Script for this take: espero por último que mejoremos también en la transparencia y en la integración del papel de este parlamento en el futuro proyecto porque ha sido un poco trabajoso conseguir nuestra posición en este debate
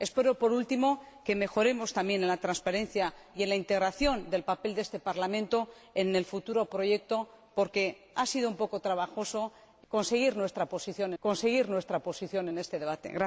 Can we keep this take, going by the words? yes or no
no